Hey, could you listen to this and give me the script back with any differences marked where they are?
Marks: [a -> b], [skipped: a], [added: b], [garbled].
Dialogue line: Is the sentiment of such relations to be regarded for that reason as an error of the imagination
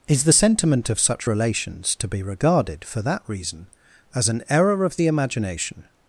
Is the sentiment of such relations to be regarded for that reason as an error of the imagination